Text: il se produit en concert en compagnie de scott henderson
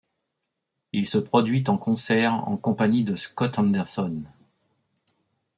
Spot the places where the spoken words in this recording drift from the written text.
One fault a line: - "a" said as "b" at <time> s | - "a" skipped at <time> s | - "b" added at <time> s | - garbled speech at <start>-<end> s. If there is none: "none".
none